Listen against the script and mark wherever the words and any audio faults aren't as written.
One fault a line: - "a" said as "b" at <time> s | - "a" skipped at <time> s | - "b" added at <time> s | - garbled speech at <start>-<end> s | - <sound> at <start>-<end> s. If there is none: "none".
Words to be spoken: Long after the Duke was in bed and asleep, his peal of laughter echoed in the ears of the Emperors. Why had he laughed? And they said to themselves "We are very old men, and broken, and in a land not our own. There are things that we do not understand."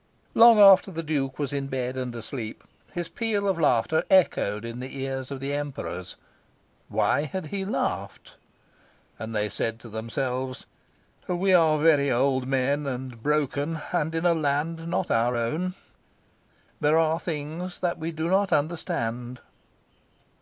none